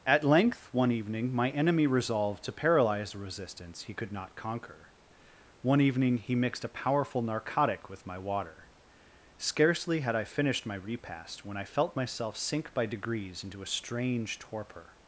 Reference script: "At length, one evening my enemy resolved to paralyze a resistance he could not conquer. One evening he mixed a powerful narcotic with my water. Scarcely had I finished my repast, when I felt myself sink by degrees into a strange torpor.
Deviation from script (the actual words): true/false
false